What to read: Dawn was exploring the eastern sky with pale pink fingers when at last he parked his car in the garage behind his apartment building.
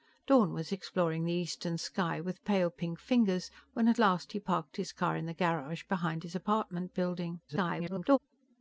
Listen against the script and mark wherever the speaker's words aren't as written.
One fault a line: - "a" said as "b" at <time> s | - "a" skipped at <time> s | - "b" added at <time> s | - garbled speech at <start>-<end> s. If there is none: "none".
- garbled speech at 7.5-8.2 s